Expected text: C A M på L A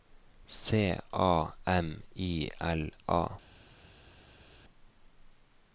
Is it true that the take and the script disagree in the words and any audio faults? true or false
true